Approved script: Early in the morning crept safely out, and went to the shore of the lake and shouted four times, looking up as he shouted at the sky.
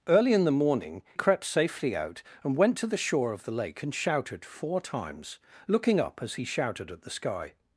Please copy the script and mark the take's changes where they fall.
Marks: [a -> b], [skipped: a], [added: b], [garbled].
Early in the morning crept safely out, and went to the shore of the lake and shouted four times, looking up as he shouted at the sky.